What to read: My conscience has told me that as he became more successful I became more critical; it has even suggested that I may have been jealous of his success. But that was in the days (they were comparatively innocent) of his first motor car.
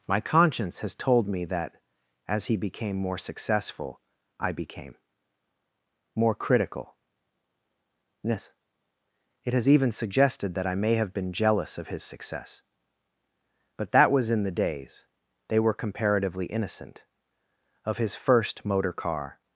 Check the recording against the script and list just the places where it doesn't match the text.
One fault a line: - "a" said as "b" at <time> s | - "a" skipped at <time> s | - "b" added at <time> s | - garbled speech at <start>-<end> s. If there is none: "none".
- "yes" added at 8.2 s